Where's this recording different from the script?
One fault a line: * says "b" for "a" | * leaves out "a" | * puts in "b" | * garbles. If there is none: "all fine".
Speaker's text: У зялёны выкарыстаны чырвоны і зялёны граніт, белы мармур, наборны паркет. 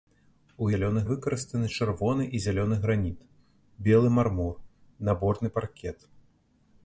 all fine